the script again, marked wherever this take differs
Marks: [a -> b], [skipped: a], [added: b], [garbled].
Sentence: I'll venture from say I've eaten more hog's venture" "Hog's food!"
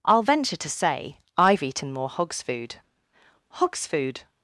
I'll venture [from -> to] say I've eaten more hog's [venture" -> food] "Hog's food!"